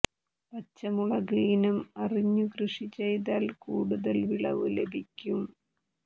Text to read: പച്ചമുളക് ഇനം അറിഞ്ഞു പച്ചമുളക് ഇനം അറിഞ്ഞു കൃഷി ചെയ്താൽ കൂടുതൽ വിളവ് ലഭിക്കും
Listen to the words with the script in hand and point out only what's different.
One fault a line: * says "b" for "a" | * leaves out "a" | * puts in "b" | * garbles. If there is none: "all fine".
* leaves out "പച്ചമുളക് ഇനം അറിഞ്ഞു"